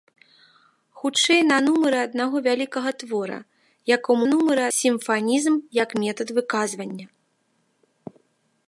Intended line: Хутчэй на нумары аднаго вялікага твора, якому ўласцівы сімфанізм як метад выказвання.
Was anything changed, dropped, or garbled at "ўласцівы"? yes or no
yes